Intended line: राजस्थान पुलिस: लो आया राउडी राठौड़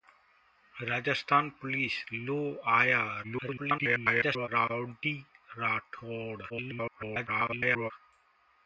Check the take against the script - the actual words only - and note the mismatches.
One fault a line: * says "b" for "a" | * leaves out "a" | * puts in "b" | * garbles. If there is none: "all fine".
* garbles
* garbles